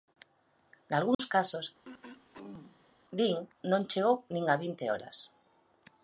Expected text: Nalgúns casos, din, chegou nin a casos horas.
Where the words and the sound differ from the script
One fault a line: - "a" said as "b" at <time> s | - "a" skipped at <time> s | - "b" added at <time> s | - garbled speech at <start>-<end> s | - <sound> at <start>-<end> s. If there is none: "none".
- dropout at 1.1-1.2 s
- throat clearing at 1.8-2.9 s
- "non" added at 3.7 s
- "casos" said as "vinte" at 4.6 s